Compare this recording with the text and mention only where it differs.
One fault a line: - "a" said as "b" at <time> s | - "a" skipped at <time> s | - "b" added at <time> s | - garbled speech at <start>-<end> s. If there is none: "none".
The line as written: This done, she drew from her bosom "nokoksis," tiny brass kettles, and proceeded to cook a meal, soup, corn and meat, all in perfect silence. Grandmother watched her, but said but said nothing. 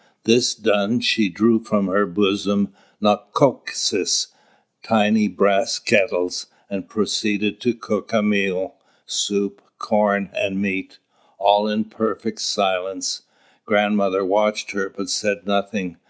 - "but said" skipped at 15.5 s